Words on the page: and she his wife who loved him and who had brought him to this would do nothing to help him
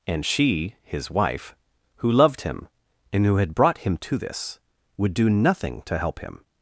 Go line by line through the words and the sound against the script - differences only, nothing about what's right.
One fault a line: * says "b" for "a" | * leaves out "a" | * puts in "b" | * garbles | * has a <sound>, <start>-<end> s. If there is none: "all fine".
all fine